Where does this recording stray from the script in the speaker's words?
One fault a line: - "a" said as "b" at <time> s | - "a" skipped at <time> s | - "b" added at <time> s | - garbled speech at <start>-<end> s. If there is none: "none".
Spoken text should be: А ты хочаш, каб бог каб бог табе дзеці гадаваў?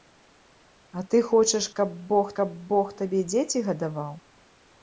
none